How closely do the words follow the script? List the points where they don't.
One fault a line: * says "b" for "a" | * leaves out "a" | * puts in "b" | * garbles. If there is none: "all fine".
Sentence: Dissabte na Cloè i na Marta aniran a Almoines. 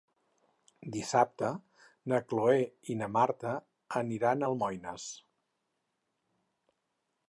all fine